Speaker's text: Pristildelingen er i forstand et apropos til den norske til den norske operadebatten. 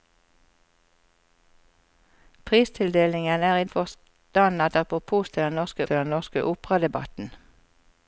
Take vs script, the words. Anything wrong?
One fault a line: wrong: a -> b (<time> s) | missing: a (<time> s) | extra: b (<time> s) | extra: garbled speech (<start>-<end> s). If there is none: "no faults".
no faults